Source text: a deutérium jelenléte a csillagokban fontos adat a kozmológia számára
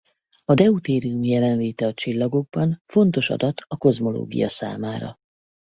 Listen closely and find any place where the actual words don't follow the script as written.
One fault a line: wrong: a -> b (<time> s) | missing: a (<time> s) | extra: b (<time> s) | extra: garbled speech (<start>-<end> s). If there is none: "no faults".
no faults